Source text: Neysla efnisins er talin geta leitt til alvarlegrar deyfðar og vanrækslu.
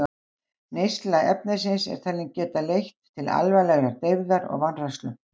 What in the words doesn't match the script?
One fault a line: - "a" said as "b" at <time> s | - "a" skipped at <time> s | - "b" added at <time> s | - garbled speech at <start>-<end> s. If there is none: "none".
none